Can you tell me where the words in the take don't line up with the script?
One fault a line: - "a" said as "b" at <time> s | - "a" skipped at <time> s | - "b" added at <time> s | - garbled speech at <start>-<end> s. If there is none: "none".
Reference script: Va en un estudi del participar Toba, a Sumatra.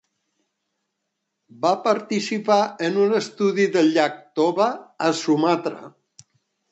- "participar" added at 1.9 s
- "participar" said as "llac" at 4.0 s